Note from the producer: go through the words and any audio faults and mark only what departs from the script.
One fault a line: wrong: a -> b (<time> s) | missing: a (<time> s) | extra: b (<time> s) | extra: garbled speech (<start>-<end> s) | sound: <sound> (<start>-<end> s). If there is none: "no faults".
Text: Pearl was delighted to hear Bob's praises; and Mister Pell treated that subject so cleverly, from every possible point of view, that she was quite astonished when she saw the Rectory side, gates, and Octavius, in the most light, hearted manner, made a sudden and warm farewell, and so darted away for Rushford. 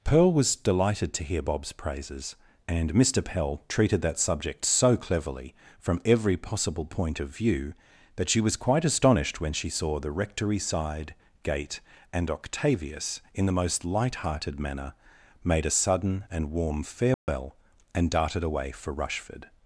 wrong: gates -> gate (11.4 s)
sound: dropout (17.1-17.3 s)
missing: so (18.1 s)